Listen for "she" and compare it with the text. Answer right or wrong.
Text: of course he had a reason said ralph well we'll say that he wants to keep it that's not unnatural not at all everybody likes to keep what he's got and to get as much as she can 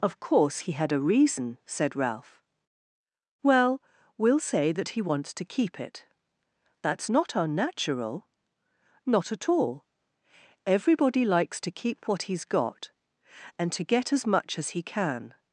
wrong